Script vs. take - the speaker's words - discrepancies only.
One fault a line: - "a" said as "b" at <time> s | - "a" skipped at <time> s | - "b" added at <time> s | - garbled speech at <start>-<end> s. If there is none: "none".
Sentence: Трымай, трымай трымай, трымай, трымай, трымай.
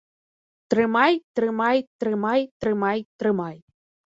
- "трымай" skipped at 3.6 s